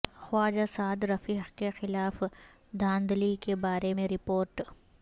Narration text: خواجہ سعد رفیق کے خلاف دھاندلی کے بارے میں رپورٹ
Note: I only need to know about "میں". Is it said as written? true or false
true